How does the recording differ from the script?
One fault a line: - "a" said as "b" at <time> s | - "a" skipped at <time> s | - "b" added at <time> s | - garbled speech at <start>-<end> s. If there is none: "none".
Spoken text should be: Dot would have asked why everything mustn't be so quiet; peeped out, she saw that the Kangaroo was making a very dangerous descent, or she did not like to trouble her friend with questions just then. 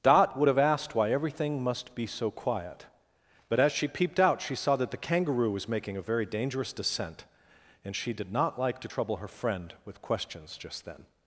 - "mustn't" said as "must" at 1.6 s
- "but as she" added at 3.5 s
- "or" said as "and" at 7.8 s